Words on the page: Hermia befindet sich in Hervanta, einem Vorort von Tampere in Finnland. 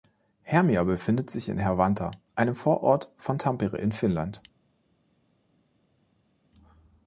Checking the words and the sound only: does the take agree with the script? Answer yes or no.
yes